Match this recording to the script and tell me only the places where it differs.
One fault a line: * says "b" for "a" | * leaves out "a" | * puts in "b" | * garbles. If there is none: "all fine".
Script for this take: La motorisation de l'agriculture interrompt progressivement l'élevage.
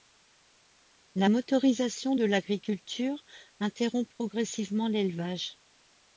all fine